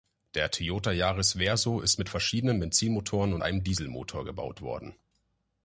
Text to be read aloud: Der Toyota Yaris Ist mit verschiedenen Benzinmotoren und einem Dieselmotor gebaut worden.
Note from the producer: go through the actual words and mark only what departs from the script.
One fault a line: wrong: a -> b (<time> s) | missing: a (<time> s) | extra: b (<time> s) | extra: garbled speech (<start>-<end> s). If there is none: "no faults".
extra: Verso (1.3 s)